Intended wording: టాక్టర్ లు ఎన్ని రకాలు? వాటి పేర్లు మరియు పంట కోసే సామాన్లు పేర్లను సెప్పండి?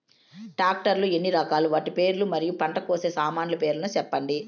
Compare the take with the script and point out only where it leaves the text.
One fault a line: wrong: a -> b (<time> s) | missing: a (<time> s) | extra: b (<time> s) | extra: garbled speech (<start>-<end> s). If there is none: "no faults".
no faults